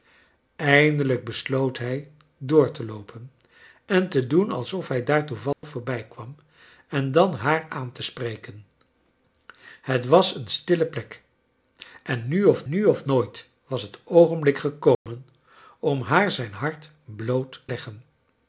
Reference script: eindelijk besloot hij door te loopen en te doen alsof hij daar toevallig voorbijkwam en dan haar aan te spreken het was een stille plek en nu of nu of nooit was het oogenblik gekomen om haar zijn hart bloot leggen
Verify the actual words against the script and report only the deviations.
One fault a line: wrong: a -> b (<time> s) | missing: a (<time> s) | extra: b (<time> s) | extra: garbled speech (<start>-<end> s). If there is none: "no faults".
no faults